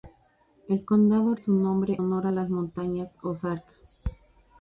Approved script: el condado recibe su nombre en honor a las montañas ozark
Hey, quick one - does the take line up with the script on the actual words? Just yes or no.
no